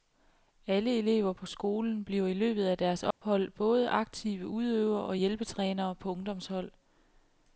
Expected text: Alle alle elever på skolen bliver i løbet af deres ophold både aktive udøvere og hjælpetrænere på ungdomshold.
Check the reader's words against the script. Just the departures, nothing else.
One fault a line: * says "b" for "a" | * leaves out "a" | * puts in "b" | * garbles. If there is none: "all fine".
* leaves out "alle"